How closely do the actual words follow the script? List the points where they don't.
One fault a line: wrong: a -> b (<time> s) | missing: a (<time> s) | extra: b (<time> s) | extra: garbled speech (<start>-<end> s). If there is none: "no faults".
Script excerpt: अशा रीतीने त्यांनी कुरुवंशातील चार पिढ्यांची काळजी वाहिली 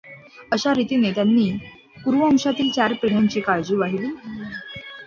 no faults